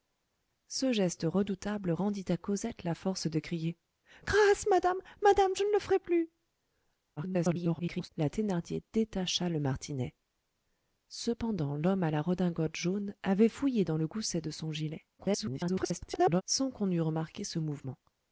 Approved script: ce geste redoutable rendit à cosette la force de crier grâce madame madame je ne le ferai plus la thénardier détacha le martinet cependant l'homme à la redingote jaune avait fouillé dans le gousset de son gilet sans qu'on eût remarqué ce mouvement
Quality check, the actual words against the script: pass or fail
fail